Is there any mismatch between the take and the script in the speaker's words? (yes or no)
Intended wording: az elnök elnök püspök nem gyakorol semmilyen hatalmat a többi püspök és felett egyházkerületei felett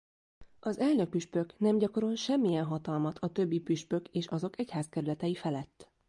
yes